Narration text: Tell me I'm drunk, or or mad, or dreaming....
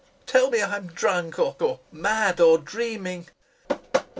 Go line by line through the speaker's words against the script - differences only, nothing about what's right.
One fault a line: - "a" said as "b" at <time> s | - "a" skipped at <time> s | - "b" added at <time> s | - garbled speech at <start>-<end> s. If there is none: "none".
none